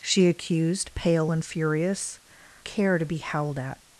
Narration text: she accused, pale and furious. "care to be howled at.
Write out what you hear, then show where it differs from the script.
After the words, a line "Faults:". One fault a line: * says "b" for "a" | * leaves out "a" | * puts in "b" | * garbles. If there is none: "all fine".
she accused, pale and furious. "care to be howled at.
Faults:
all fine